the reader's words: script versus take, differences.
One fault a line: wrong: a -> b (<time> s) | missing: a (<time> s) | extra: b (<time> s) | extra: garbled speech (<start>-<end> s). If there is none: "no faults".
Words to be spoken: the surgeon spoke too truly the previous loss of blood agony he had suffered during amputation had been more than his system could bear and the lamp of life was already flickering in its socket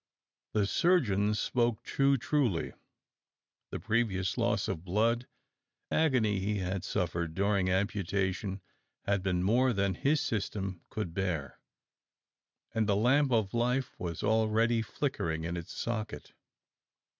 no faults